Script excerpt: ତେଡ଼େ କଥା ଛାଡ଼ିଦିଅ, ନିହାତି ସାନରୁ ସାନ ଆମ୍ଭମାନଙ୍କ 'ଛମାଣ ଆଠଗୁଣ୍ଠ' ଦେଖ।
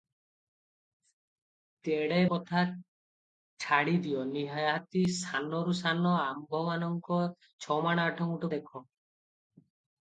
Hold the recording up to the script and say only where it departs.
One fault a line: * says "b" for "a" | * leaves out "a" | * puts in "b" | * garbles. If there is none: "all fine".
all fine